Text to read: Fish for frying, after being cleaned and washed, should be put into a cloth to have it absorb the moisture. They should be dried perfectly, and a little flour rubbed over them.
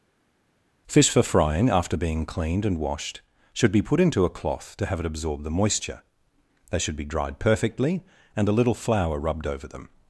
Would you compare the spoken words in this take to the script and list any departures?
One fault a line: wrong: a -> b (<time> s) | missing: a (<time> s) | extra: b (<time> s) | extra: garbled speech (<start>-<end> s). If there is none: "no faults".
no faults